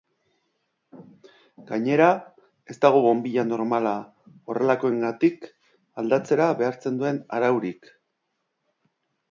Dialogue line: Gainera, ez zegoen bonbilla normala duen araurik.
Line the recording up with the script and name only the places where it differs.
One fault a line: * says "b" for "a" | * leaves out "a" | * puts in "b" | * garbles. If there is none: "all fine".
* says "dago" for "zegoen"
* puts in "horrelakoengatik aldatzera behartzen"